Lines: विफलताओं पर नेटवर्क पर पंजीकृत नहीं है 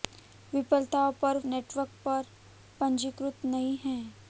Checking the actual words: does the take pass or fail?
pass